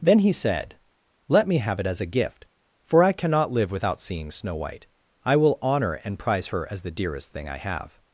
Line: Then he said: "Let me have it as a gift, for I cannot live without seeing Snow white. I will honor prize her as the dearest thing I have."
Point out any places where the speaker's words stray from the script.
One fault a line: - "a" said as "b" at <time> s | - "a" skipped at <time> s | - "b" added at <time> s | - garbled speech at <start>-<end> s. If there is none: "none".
- "and" added at 6.0 s